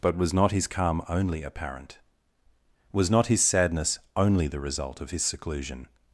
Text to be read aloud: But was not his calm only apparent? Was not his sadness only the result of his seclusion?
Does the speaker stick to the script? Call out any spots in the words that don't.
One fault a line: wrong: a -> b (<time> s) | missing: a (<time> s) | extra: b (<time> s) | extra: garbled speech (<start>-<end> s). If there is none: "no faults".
no faults